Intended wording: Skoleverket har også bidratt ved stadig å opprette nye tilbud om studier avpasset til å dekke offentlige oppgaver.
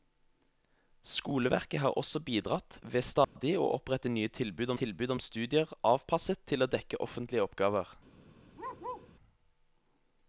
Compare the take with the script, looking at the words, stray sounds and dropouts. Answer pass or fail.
fail